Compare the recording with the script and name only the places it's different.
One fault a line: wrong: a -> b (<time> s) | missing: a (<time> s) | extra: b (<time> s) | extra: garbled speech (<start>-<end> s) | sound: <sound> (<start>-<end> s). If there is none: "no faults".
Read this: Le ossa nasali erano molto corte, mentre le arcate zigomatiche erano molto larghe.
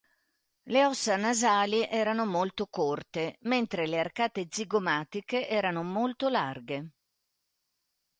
no faults